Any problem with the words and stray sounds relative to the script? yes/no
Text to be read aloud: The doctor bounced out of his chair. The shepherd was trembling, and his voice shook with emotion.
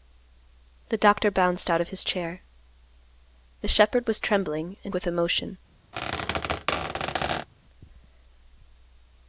yes